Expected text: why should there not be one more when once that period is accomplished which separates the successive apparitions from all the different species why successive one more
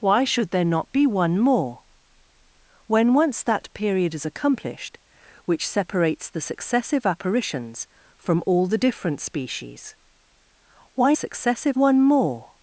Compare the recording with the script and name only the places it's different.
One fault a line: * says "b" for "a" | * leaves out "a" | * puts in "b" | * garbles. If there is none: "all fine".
all fine